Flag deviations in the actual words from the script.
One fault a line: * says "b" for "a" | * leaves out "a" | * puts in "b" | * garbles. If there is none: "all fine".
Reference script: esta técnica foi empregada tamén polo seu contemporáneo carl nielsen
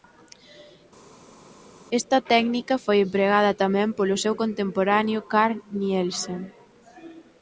all fine